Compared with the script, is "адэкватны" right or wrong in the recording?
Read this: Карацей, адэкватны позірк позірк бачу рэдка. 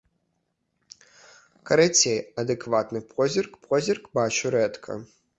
right